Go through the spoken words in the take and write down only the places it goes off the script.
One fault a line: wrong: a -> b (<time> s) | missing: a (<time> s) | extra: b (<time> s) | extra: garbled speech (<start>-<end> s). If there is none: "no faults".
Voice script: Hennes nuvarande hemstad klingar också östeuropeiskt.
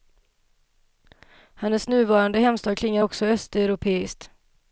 no faults